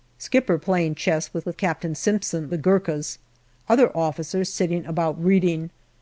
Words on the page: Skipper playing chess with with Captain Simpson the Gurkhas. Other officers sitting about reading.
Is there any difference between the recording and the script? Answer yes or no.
no